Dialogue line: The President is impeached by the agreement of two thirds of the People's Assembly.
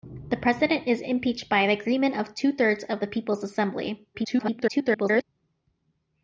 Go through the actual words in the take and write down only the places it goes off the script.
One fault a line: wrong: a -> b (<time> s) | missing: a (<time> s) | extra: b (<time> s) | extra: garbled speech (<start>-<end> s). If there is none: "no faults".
extra: garbled speech (4.1-5.2 s)